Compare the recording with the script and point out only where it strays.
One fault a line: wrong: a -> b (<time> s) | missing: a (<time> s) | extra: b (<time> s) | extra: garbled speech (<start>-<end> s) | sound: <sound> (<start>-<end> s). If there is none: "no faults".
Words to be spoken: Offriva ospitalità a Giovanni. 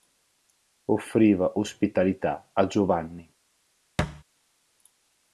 sound: thud (4.0-4.2 s)